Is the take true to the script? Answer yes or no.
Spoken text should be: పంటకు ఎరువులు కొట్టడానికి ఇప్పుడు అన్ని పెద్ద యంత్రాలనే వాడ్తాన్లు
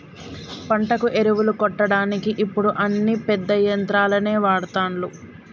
yes